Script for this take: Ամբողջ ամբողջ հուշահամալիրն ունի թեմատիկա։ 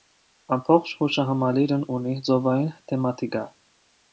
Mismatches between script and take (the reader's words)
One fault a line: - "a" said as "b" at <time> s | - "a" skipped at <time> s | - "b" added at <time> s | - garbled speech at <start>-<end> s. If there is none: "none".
- "ամբողջ" skipped at 0.9 s
- "ծովային" added at 2.3 s